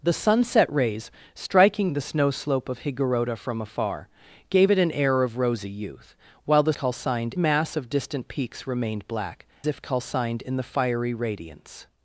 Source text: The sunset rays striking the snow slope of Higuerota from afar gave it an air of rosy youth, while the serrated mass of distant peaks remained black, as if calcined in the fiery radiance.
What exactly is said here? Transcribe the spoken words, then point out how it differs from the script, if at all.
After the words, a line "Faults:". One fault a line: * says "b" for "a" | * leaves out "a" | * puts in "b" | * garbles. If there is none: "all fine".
The sunset rays striking the snow slope of Higuerota from afar gave it an air of rosy youth, while the calcined mass of distant peaks remained black, if calcined in the fiery radiance.
Faults:
* says "calcined" for "serrated"
* leaves out "as"